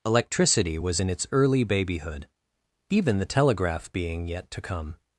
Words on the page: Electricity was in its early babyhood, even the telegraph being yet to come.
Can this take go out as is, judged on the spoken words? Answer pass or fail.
pass